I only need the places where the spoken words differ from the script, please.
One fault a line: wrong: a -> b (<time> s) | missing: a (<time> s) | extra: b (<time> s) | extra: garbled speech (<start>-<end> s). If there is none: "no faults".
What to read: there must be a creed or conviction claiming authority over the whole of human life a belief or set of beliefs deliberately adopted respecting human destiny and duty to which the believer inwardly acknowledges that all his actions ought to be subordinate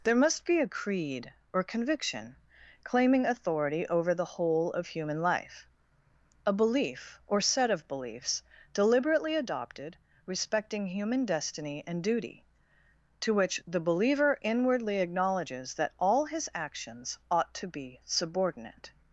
no faults